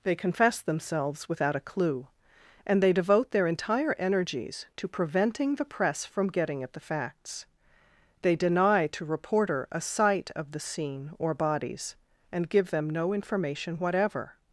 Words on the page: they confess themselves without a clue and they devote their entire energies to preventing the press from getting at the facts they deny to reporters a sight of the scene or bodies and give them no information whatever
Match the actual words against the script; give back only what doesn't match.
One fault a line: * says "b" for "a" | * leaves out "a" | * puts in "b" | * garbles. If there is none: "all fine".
* says "reporter" for "reporters"